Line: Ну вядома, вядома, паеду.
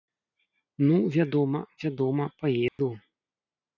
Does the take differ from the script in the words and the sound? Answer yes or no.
yes